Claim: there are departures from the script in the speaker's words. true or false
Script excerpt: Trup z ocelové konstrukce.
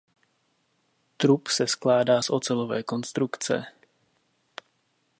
true